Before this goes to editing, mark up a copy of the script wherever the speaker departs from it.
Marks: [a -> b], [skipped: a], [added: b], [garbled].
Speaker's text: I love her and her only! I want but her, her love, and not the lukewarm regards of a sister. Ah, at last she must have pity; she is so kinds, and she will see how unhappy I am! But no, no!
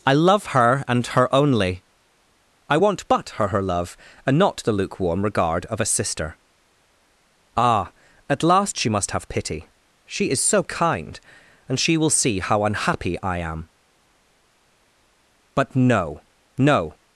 I love her and her only! I want but her, her love, and not the lukewarm [regards -> regard] of a sister. Ah, at last she must have pity; she is so [kinds, -> kind] and she will see how unhappy I am! But no, no!